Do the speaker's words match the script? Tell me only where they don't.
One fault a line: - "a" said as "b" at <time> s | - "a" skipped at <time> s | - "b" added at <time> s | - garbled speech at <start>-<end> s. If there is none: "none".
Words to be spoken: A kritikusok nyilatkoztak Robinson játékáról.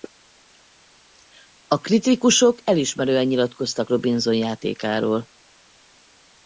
- "elismerően" added at 2.6 s